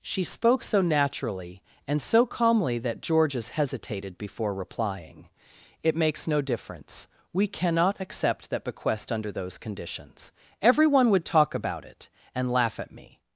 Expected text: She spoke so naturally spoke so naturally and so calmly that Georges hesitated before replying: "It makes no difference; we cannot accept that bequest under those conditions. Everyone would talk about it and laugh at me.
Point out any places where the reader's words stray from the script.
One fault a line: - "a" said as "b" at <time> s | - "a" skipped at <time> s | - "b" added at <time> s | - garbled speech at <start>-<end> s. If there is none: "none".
- "spoke so naturally" skipped at 1.6 s